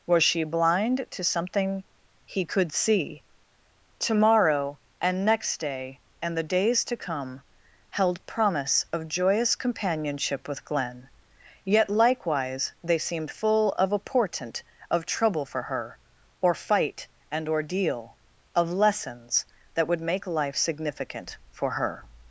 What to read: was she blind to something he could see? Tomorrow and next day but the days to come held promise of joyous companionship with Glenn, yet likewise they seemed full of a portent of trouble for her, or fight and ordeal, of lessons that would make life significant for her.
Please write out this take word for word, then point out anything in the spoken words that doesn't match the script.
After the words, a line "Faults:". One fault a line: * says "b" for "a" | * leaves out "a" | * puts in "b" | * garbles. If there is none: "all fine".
was she blind to something he could see? Tomorrow and next day and the days to come held promise of joyous companionship with Glenn, yet likewise they seemed full of a portent of trouble for her, or fight and ordeal, of lessons that would make life significant for her.
Faults:
* says "and" for "but"